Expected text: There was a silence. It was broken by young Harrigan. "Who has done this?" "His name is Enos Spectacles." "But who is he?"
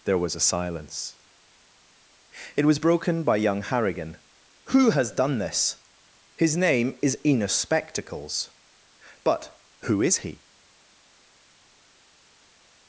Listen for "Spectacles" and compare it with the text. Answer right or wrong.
right